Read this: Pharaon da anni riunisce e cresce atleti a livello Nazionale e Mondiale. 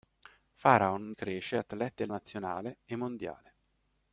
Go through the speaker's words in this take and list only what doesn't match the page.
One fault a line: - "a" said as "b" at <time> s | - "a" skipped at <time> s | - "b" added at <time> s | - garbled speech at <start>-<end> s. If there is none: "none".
- "da anni riunisce" skipped at 1.1 s
- "livello" skipped at 2.1 s